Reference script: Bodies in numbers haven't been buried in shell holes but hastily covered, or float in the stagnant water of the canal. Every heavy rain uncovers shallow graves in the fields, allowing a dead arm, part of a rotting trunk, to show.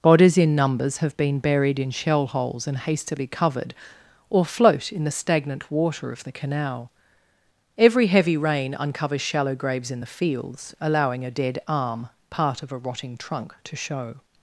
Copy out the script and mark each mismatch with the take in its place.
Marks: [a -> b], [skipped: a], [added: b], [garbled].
Bodies in numbers [haven't -> have] been buried in shell holes [but -> and] hastily covered, or float in the stagnant water of the canal. Every heavy rain uncovers shallow graves in the fields, allowing a dead arm, part of a rotting trunk, to show.